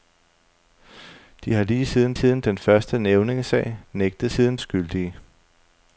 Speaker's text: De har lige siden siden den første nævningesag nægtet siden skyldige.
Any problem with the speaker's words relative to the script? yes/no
no